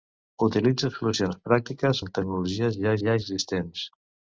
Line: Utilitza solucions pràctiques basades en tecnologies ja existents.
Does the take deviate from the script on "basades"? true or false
true